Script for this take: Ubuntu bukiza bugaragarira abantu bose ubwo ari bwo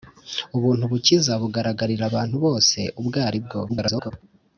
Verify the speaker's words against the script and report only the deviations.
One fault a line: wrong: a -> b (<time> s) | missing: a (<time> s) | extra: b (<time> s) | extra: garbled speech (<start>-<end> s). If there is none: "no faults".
extra: garbled speech (3.7-4.1 s)